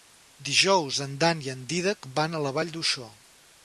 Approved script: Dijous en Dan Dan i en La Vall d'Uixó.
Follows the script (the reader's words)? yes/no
no